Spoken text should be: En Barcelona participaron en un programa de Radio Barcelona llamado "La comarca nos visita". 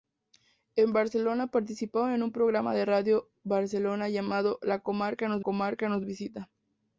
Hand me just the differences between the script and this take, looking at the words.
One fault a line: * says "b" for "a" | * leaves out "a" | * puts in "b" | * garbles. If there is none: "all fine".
* puts in "comarca nos"